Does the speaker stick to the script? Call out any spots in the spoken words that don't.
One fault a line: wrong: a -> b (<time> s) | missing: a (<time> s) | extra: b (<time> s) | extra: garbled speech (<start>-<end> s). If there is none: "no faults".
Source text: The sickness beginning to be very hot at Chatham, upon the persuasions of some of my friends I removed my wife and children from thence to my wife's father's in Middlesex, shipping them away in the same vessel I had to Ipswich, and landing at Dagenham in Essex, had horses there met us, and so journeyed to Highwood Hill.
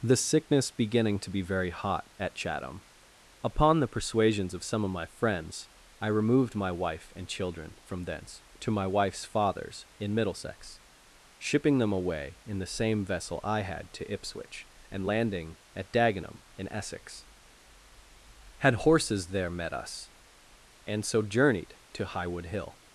no faults